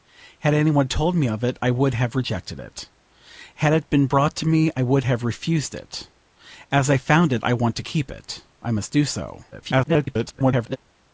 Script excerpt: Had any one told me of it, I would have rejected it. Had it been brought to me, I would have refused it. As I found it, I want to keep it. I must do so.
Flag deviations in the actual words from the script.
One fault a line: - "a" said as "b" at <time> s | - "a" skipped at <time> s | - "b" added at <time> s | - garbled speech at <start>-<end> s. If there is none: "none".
- garbled speech at 9.5-10.8 s